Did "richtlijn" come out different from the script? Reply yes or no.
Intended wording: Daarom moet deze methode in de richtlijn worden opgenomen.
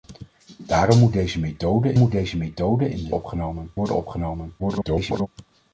yes